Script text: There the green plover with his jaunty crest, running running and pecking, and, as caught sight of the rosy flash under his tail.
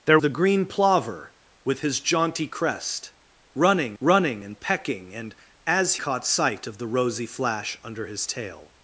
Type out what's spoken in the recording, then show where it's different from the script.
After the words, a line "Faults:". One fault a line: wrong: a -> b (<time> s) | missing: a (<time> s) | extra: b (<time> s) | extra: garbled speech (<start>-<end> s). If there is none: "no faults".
There the green plover with his jaunty crest, running running and pecking, and, as caught sight of the rosy flash under his tail.
Faults:
no faults